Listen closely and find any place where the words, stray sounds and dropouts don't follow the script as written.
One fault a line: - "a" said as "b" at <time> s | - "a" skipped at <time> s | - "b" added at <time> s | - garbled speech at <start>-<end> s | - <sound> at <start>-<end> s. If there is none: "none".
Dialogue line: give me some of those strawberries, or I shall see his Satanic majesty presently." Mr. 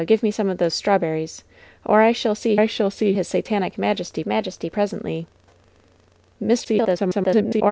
- "I shall see" added at 2.5 s
- "majesty" added at 4.3 s
- garbled speech at 6.6-7.7 s